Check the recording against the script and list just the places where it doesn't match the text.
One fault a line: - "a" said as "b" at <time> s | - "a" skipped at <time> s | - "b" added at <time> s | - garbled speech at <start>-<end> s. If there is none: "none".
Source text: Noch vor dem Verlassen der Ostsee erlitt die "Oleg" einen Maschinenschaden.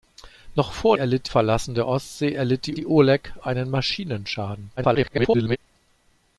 - "dem" said as "erlitt" at 0.9 s
- "die" added at 2.8 s
- garbled speech at 4.8-5.6 s